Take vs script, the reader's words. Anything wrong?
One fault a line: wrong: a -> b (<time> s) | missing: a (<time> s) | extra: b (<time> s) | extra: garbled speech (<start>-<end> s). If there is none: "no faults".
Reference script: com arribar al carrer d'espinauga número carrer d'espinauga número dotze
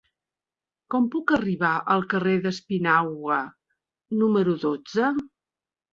extra: puc (1.1 s)
missing: carrer d'espinauga número (4.6 s)